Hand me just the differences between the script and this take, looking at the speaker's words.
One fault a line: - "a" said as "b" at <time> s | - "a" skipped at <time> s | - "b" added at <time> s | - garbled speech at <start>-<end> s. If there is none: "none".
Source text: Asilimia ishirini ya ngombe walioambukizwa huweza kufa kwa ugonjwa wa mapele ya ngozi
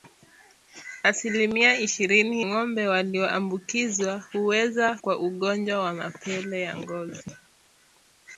- "ya" skipped at 2.4 s
- "kufa" skipped at 5.0 s